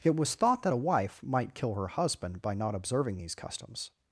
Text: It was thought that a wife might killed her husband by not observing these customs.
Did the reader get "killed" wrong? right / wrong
wrong